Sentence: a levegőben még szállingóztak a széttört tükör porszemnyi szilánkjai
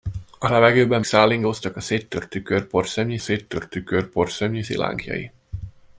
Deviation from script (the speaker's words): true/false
true